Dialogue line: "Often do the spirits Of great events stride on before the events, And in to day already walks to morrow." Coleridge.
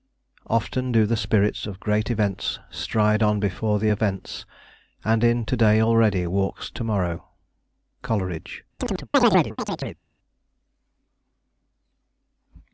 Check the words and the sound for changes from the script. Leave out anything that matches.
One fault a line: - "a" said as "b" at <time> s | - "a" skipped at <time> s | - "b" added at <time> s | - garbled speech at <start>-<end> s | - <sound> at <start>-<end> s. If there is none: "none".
- chirp at 8.8-10.0 s